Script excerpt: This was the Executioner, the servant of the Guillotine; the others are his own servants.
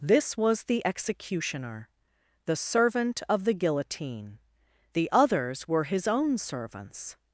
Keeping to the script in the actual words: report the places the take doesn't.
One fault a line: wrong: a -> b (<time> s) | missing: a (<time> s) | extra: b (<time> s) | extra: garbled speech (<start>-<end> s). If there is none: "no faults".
wrong: are -> were (5.7 s)